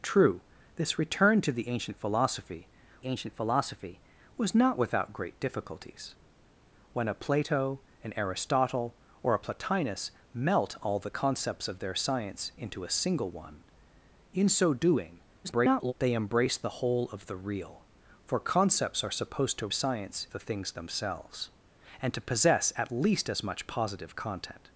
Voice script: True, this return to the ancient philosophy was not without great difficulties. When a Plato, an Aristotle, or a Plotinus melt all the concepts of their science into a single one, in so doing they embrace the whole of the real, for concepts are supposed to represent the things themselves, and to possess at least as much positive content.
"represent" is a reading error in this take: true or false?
true